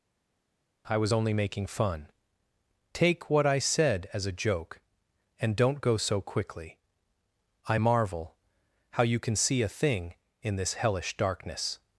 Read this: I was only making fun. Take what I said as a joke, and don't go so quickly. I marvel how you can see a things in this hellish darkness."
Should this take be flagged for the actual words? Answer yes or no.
yes